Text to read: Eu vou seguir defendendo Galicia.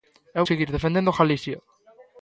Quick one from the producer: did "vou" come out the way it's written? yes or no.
no